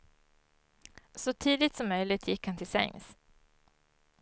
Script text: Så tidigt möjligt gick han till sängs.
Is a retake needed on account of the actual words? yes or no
yes